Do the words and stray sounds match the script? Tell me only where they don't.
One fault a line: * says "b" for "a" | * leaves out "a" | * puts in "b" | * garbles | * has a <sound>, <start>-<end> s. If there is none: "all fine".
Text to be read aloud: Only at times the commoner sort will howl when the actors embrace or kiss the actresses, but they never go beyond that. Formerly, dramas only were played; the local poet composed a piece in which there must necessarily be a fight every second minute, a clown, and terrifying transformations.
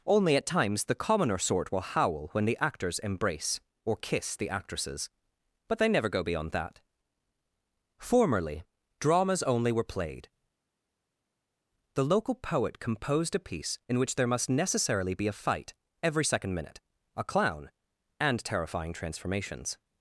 all fine